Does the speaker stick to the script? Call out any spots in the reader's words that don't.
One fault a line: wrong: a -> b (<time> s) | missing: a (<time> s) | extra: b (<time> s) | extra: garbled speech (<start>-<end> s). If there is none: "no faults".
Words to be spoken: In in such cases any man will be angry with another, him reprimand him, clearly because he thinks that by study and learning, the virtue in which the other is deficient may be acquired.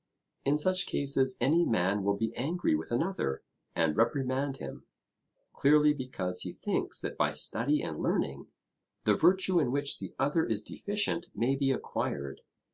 missing: in (0.6 s)
wrong: him -> and (3.8 s)